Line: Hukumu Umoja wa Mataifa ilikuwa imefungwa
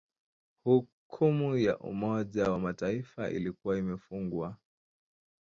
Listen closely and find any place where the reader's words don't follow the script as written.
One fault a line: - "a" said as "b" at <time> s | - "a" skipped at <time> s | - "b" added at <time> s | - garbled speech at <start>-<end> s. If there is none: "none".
- "ya" added at 1.6 s